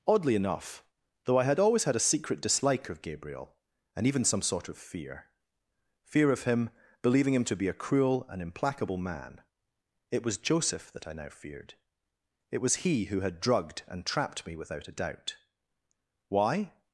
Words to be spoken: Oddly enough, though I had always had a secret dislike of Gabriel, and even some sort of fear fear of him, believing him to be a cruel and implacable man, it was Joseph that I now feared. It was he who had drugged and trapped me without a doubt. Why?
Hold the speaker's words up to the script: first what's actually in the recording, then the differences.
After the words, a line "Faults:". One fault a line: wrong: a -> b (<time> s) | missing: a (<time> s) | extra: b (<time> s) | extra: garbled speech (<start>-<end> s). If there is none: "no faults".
Oddly enough, though I had always had a secret dislike of Gabriel, and even some sort of fear fear of him, believing him to be a cruel and implacable man, it was Joseph that I now feared. It was he who had drugged and trapped me without a doubt. Why?
Faults:
no faults